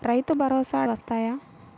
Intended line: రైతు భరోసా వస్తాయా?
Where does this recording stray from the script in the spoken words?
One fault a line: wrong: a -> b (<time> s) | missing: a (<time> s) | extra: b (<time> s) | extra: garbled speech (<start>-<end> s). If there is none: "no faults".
no faults